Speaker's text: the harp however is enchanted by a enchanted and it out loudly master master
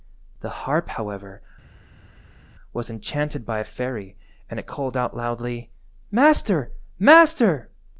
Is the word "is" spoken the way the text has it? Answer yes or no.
no